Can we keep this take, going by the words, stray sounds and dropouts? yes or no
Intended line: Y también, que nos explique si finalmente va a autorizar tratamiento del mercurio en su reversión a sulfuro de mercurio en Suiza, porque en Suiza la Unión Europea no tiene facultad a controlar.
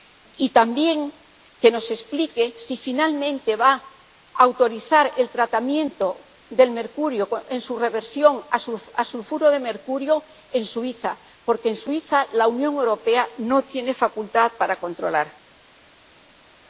no